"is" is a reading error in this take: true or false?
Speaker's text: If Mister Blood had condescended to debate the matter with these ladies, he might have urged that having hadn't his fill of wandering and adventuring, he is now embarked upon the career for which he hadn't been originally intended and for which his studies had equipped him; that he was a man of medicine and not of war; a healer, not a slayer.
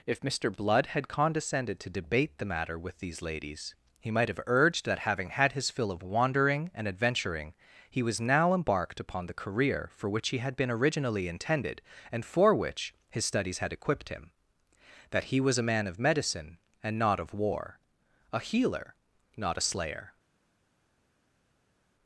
true